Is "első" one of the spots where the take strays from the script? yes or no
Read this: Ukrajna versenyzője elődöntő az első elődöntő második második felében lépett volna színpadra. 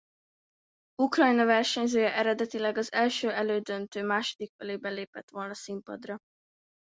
no